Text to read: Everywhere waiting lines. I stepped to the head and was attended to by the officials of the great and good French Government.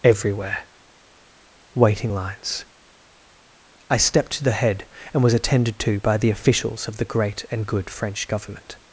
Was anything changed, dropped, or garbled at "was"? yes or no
no